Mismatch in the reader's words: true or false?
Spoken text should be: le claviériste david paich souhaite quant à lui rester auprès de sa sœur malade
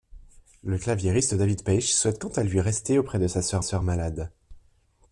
true